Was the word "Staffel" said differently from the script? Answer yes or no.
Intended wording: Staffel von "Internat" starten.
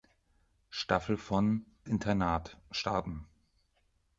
no